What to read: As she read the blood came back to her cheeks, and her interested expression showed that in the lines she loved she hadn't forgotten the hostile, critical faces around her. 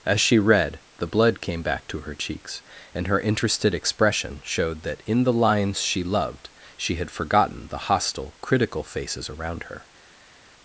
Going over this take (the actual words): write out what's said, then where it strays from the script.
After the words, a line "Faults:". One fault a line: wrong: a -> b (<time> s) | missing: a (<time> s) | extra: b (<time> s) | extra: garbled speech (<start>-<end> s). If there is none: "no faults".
As she read the blood came back to her cheeks, and her interested expression showed that in the lines she loved she had forgotten the hostile, critical faces around her.
Faults:
wrong: hadn't -> had (7.0 s)